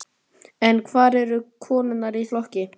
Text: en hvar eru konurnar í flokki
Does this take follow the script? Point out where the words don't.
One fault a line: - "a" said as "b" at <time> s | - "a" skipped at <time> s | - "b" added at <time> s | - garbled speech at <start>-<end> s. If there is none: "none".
none